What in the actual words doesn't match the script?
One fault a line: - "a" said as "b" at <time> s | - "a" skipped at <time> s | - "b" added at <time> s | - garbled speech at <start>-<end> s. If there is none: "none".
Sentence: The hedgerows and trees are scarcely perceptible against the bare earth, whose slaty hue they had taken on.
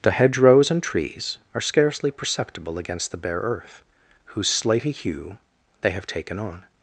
- "had" said as "have" at 5.9 s